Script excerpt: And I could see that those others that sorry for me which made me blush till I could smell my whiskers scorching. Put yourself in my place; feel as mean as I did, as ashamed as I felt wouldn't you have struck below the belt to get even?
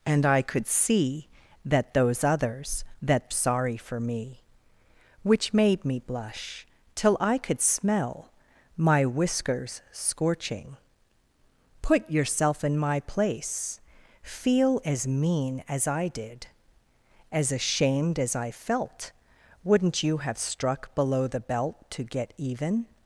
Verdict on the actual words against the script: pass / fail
pass